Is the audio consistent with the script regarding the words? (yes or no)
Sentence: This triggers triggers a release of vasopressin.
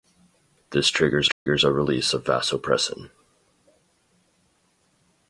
yes